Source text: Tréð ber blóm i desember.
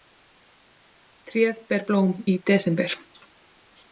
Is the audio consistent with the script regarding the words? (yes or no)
yes